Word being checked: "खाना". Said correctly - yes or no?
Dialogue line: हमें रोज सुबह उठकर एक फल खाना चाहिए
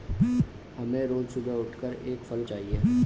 no